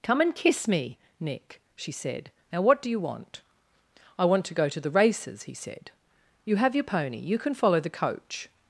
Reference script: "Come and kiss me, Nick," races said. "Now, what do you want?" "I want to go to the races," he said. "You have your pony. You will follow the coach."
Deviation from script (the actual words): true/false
true